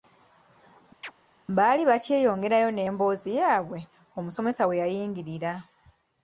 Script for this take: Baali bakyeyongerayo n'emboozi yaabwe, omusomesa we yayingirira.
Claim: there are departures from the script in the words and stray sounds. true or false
true